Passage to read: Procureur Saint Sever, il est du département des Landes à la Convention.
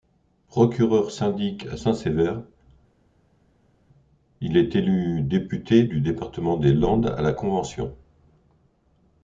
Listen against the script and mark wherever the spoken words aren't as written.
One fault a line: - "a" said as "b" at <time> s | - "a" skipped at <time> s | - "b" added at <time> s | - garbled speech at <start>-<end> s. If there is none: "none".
- "syndic à" added at 1.1 s
- "élu député" added at 4.7 s